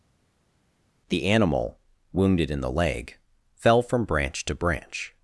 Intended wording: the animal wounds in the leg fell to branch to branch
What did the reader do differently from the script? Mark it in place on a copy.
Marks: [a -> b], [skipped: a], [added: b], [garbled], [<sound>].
the animal [wounds -> wounded] in the leg fell [to -> from] branch to branch